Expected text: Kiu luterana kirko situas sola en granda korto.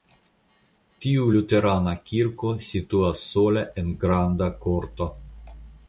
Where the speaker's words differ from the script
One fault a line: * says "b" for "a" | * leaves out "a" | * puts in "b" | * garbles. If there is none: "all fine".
* says "Tiu" for "Kiu"